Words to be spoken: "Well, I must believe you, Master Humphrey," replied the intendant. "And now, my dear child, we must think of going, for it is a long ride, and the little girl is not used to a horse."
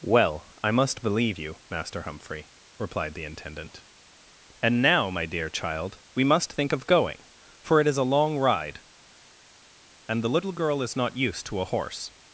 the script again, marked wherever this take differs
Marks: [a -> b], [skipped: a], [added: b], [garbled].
"Well, I must believe you, Master Humphrey," replied the intendant. "And now, my dear child, we must think of going, for it is a long ride, and the little girl is not used to a horse."